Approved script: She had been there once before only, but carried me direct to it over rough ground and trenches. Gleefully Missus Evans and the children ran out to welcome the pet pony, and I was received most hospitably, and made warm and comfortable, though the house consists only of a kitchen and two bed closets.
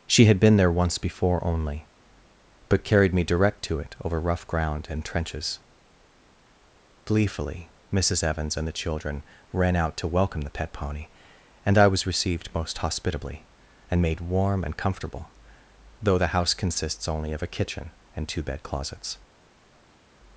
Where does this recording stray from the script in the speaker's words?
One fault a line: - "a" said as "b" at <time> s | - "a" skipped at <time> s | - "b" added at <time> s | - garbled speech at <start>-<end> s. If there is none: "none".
none